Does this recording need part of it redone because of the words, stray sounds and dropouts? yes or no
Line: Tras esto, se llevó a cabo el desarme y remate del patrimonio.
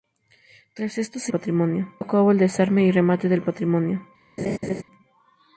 yes